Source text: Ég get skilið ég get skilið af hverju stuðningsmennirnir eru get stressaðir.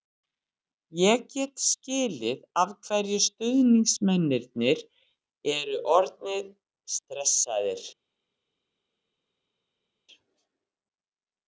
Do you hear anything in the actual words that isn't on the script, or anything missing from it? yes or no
yes